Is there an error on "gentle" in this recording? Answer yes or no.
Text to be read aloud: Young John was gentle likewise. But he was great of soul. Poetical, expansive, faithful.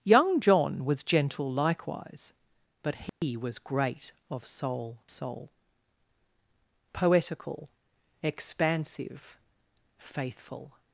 no